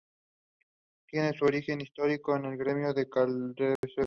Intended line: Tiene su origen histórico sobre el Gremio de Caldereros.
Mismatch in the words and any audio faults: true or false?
true